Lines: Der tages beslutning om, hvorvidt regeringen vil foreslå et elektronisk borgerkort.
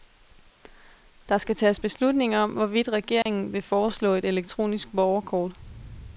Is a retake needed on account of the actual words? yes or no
yes